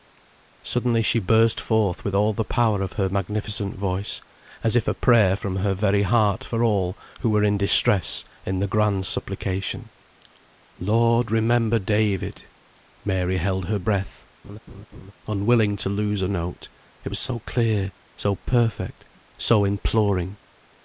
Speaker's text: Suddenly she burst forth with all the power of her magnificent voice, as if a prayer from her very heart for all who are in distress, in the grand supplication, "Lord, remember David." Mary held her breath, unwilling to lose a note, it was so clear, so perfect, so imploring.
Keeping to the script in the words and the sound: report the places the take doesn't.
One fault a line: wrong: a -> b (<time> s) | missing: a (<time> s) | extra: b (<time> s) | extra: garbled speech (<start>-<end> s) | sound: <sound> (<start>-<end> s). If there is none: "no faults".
wrong: are -> were (7.3 s)
sound: laugh (14.4-15.1 s)